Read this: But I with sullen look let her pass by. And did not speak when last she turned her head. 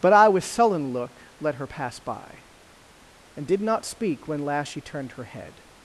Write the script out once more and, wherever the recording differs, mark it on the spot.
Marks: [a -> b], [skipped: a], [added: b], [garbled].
But I with sullen look let her pass by. And did not speak when last she turned her head.